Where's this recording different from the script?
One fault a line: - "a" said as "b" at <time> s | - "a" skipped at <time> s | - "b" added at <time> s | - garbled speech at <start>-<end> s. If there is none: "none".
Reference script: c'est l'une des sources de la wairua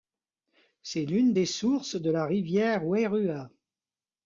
- "rivière" added at 2.2 s